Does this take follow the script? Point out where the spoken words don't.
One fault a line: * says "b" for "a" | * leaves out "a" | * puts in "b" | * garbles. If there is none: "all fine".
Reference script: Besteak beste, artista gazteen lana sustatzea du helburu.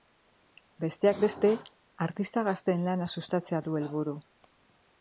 all fine